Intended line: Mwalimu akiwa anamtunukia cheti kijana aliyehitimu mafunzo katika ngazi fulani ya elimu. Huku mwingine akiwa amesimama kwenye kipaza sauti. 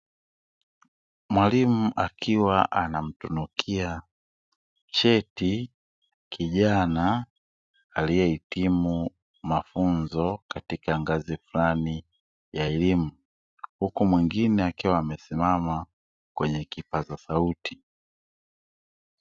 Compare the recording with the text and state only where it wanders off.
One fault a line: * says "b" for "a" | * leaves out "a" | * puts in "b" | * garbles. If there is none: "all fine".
all fine